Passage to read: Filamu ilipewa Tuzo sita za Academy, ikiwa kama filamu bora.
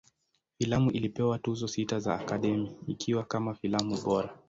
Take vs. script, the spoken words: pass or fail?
pass